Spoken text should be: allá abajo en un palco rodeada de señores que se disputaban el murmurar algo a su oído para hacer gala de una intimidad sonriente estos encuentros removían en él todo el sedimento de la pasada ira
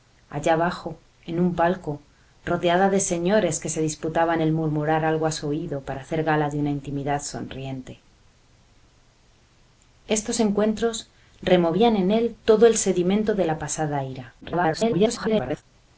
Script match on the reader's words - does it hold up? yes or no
no